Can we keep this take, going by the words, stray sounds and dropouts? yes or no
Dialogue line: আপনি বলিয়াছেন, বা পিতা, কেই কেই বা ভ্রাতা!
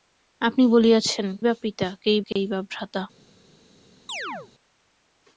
no